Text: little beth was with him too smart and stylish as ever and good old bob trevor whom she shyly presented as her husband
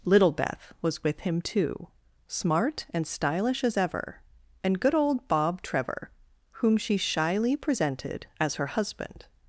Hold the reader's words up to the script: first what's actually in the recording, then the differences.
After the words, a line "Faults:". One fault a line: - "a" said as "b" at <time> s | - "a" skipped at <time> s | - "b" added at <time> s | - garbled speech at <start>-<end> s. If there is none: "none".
little beth was with him too smart and stylish as ever and good old bob trevor whom she shyly presented as her husband
Faults:
none